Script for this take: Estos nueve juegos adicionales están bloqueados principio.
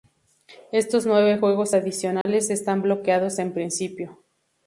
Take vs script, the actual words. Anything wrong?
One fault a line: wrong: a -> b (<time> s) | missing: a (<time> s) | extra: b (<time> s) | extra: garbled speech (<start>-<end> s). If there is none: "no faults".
extra: en (3.4 s)